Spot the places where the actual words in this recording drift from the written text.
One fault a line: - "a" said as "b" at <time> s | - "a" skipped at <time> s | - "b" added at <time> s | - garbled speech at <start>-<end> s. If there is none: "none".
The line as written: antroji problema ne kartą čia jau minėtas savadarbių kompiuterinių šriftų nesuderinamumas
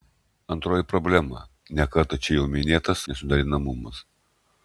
- "savadarbių kompiuterinių šriftų" skipped at 3.0 s